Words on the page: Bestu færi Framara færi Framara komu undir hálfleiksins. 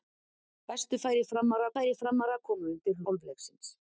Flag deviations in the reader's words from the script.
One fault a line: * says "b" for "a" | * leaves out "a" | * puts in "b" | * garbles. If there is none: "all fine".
all fine